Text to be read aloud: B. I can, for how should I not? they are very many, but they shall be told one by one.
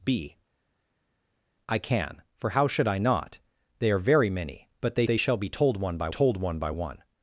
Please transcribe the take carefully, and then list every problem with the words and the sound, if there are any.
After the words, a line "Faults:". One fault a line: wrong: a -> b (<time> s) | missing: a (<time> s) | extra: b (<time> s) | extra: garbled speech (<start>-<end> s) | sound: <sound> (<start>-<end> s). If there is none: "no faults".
B. I can, for how should I not? they are very many, but they they shall be told one by told one by one.
Faults:
extra: they (5.0 s)
extra: told one by (6.1 s)